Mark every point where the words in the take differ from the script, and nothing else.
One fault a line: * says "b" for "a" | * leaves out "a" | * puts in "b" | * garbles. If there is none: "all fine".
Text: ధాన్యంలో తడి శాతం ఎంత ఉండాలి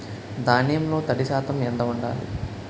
all fine